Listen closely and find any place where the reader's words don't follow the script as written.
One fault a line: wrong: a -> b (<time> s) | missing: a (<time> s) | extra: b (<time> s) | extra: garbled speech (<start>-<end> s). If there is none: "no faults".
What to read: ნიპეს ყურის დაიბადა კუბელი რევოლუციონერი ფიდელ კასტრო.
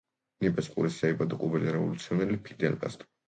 no faults